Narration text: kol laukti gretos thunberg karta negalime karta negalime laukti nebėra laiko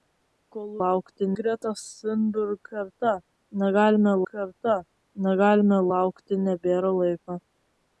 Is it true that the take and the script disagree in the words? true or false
false